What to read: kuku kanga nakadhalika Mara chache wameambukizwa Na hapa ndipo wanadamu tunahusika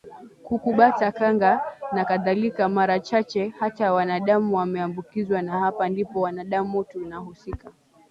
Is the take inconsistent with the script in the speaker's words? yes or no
yes